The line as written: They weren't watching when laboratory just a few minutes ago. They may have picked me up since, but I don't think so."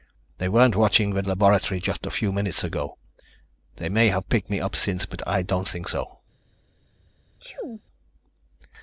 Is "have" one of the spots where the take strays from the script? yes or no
no